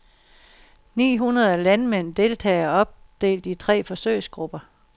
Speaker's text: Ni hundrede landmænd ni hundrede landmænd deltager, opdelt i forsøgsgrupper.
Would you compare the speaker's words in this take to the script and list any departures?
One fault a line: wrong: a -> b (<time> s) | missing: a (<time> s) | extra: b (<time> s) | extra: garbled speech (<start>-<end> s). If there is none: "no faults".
missing: ni hundrede landmænd (2.1 s)
extra: tre (3.5 s)